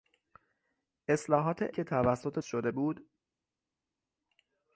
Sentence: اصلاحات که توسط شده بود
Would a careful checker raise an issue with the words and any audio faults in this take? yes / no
no